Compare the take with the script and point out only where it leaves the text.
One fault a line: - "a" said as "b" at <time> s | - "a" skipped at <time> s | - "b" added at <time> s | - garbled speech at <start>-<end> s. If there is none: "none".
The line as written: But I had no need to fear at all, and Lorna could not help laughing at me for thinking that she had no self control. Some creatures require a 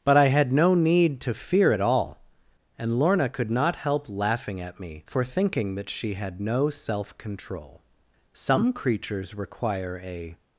none